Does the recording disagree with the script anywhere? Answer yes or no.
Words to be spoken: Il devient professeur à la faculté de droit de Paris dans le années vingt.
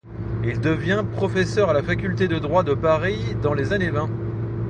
yes